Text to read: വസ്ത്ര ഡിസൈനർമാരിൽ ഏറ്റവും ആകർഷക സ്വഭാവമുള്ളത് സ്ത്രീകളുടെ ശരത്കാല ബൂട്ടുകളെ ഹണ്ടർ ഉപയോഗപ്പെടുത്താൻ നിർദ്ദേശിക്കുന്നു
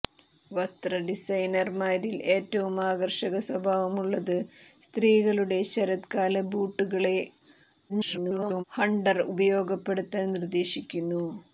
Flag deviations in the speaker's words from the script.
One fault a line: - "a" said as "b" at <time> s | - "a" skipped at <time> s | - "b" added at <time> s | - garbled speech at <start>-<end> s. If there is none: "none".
- garbled speech at 7.9-8.6 s